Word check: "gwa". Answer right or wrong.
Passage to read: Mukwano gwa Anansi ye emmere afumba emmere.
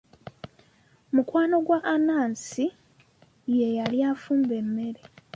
right